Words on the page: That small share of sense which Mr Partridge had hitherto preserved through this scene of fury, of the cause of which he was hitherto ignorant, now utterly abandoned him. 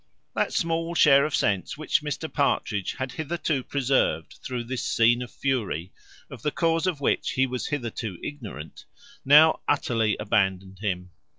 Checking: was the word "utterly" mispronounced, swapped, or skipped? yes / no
no